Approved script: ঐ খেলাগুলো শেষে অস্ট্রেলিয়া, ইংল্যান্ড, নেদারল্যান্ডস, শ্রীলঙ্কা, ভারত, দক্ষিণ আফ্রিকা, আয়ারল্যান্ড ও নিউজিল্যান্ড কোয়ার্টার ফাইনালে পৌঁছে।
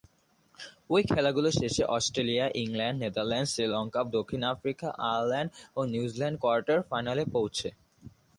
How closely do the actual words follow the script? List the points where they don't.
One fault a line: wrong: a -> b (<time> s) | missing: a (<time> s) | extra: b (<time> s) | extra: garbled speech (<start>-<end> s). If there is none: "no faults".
missing: ভারত (4.0 s)